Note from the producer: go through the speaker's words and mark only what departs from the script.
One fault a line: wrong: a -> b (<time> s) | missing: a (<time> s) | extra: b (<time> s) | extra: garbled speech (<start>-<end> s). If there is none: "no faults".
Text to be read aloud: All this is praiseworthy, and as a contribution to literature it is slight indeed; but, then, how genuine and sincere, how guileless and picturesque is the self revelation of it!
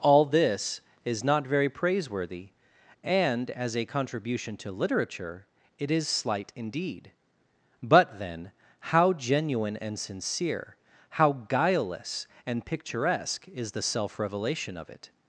extra: not very (1.2 s)